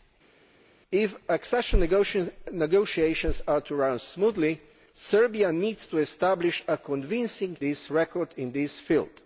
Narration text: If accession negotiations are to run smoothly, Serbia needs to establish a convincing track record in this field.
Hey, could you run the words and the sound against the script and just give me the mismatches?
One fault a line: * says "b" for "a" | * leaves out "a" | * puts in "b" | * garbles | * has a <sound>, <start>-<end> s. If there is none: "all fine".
* says "this" for "track"